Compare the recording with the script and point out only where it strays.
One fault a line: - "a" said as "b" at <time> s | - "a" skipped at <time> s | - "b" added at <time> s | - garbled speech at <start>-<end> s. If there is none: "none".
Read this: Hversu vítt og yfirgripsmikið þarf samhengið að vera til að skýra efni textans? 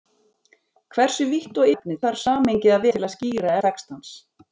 - "yfirgripsmikið" said as "efni" at 1.7 s
- "vera" skipped at 2.9 s
- "efni" skipped at 3.5 s